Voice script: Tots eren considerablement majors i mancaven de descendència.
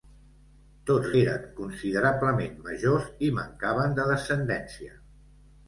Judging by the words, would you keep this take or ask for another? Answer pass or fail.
pass